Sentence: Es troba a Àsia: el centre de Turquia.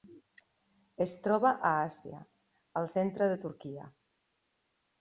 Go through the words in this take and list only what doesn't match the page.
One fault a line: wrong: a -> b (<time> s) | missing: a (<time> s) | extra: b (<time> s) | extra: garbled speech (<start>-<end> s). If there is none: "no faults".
no faults